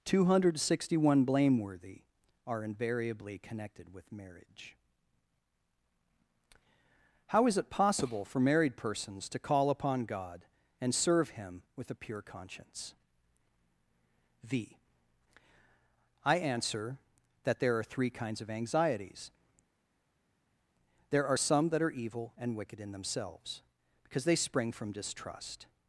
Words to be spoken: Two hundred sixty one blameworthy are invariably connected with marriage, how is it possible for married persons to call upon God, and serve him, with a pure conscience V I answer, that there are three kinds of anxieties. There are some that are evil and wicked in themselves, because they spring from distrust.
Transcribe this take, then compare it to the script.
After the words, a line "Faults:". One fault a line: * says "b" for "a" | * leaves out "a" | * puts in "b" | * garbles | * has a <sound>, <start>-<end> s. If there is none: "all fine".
Two hundred sixty one blameworthy are invariably connected with marriage, how is it possible for married persons to call upon God, and serve him, with a pure conscience V I answer, that there are three kinds of anxieties. There are some that are evil and wicked in themselves, because they spring from distrust.
Faults:
all fine